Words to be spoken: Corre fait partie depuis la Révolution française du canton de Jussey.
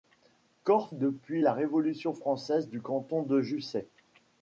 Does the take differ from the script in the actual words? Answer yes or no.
yes